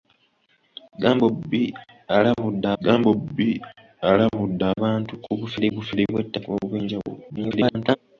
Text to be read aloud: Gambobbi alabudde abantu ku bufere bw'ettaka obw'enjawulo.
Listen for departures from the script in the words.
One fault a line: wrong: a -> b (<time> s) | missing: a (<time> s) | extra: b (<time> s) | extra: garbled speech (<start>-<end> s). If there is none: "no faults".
extra: gambobbi alabudde (2.8 s)
extra: bufere (5.7 s)
extra: garbled speech (7.3-8.0 s)